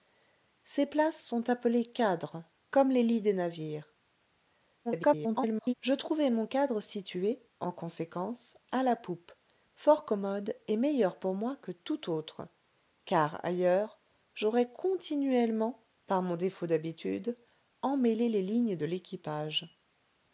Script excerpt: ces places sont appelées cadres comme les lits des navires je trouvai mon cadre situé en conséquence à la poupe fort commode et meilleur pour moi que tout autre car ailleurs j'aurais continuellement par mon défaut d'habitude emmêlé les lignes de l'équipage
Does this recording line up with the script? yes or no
no